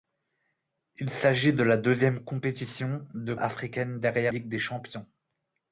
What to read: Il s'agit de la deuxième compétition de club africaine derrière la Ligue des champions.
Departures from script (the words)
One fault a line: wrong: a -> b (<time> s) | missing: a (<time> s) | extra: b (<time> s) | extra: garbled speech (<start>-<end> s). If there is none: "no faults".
missing: club (3.4 s)
missing: la (4.4 s)